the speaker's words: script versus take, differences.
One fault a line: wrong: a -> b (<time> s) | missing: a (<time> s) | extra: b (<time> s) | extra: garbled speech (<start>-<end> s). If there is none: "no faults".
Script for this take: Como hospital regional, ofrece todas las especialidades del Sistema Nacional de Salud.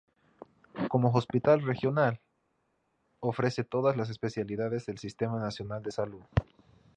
no faults